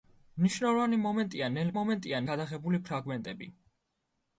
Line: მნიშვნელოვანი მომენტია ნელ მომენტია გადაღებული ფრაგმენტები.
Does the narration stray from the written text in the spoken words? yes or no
no